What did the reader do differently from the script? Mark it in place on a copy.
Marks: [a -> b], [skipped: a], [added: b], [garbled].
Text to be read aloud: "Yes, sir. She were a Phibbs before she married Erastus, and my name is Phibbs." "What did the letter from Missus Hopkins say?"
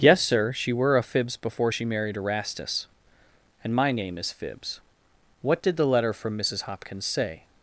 "Yes, sir. She were a Phibbs before she married Erastus, and my name is Phibbs." "What did the letter from Missus Hopkins say?"